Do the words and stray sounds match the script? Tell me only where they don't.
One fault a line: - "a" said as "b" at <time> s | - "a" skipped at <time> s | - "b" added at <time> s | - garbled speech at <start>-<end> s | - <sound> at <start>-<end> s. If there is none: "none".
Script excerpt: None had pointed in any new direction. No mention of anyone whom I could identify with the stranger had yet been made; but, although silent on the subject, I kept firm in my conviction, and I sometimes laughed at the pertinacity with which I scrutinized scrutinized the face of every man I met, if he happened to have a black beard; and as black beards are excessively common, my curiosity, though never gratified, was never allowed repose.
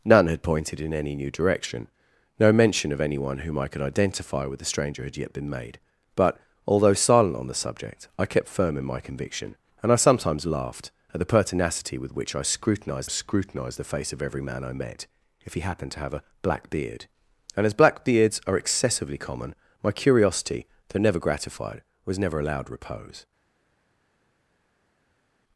none